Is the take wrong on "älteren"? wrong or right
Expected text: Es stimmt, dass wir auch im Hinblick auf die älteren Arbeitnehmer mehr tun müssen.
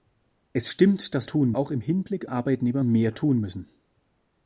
wrong